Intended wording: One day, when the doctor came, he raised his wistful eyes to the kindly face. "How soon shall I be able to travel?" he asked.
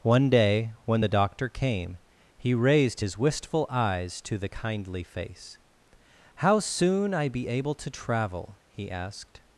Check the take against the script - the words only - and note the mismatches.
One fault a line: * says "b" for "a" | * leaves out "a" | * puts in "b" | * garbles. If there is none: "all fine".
* leaves out "shall"